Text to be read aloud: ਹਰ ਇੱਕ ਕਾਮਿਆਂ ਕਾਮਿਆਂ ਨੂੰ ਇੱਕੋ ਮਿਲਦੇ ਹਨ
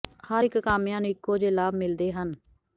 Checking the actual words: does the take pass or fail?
fail